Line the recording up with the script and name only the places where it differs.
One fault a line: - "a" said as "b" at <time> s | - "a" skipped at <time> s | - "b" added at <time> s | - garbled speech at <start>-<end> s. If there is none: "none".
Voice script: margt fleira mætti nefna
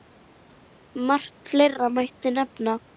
none